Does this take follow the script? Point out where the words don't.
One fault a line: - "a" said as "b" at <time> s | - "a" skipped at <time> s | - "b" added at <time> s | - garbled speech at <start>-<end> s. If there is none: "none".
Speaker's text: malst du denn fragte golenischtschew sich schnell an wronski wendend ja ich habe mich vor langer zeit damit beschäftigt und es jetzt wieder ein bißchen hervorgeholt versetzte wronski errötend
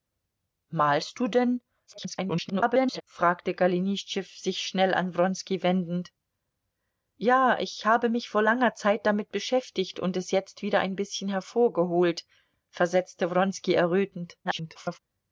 - garbled speech at 1.9-3.0 s
- garbled speech at 14.4-15.0 s